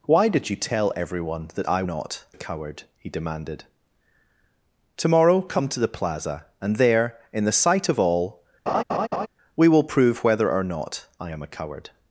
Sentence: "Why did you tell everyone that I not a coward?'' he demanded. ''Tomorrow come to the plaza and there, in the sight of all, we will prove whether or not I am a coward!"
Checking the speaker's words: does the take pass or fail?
pass